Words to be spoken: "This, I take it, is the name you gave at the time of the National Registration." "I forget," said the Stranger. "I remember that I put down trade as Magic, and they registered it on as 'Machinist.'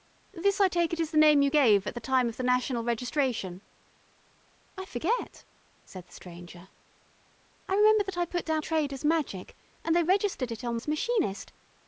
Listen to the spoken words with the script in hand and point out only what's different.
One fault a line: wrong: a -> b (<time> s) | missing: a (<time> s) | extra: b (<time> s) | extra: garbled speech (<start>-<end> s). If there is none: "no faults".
no faults